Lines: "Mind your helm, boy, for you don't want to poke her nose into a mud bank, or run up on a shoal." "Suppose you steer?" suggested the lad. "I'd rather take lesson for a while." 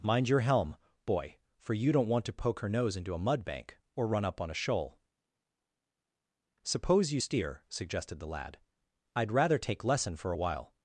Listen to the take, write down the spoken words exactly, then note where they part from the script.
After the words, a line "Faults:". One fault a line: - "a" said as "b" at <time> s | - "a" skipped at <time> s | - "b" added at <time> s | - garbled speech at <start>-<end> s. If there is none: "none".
"Mind your helm, boy, for you don't want to poke her nose into a mud bank, or run up on a shoal." "Suppose you steer?" suggested the lad. "I'd rather take lesson for a while."
Faults:
none